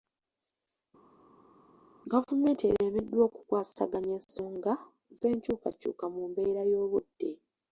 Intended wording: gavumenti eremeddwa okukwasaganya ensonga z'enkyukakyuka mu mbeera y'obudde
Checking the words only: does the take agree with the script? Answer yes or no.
yes